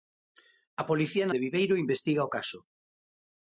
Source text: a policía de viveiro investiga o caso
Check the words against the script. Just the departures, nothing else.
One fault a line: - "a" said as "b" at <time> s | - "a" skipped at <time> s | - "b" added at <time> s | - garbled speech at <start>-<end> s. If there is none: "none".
none